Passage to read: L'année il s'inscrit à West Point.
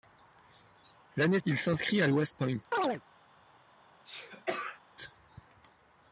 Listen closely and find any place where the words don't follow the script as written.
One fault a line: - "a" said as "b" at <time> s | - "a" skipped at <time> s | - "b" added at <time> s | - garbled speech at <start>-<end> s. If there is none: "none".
none